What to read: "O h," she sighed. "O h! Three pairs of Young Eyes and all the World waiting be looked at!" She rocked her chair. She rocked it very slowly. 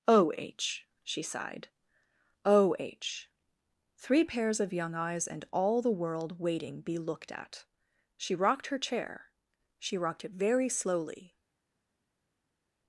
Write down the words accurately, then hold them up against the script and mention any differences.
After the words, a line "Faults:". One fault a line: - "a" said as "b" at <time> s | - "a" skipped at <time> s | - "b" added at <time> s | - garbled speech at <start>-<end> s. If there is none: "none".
"O h," she sighed. "O h! Three pairs of Young Eyes and all the World waiting be looked at!" She rocked her chair. She rocked it very slowly.
Faults:
none